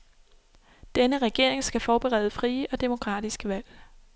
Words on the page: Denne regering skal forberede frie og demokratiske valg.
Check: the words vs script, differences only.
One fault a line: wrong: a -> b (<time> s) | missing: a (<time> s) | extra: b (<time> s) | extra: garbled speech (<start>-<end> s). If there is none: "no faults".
no faults